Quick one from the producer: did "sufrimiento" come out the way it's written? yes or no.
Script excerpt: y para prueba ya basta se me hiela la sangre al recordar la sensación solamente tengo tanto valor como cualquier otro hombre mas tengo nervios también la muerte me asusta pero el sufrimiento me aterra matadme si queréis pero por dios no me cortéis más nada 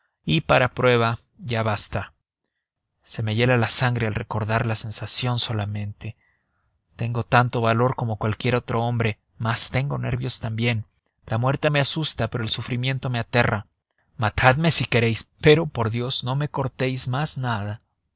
yes